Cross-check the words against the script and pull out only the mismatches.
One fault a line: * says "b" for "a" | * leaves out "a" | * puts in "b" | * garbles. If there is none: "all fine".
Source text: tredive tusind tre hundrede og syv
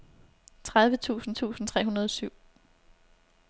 * puts in "tusind"